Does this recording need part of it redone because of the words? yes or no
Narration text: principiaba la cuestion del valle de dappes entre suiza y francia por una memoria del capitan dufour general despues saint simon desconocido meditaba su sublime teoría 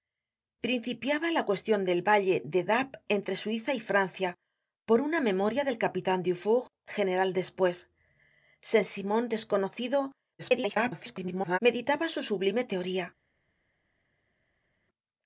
yes